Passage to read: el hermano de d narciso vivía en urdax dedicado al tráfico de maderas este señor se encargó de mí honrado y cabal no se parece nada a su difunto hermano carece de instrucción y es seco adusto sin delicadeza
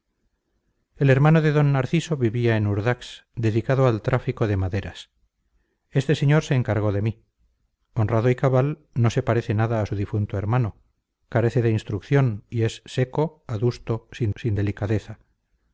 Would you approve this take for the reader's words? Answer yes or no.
no